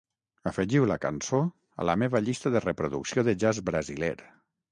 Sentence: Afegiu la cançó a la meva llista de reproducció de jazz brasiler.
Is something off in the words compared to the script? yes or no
no